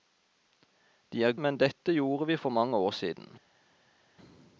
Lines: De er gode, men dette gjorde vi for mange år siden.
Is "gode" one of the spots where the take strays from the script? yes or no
yes